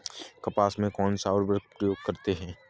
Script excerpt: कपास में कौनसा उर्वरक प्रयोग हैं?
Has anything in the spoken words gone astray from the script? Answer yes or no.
yes